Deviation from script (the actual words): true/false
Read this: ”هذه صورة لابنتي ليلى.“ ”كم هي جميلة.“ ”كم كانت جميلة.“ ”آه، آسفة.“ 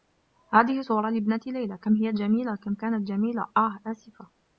false